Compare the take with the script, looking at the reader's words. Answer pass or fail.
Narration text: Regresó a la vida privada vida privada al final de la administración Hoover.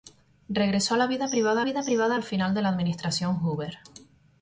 pass